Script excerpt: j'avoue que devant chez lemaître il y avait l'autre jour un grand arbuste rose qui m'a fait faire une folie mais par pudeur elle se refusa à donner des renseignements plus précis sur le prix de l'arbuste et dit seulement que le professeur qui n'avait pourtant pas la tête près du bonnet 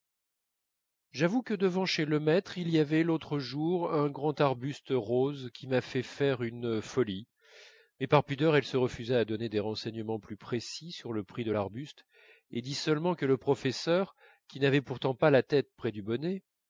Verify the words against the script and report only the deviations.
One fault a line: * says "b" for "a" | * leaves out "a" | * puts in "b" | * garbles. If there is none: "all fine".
all fine